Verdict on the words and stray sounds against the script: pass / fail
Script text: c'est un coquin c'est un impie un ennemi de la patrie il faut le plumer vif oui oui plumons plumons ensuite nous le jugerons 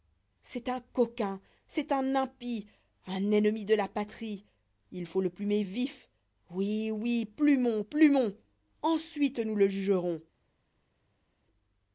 pass